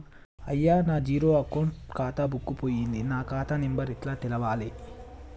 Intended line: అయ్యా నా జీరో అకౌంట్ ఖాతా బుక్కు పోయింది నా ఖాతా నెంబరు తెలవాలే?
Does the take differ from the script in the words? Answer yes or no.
yes